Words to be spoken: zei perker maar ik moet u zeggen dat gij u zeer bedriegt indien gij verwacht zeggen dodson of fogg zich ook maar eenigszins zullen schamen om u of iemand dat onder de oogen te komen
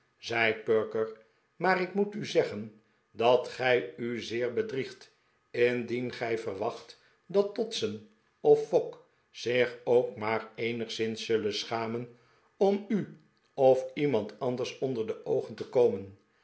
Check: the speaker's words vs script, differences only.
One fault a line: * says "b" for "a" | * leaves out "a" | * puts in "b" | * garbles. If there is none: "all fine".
* says "dat" for "zeggen"
* says "anders" for "dat"